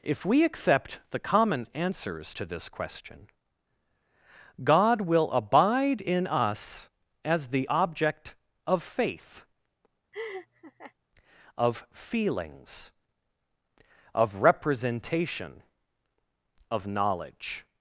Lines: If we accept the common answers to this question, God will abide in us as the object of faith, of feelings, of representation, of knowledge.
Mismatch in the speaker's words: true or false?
false